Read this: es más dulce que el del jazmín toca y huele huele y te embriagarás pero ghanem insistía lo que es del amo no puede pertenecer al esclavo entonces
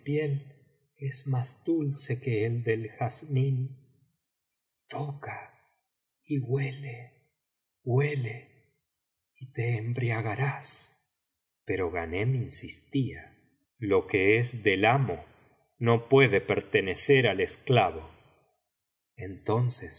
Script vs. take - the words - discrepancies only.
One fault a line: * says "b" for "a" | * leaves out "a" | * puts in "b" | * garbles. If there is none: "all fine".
all fine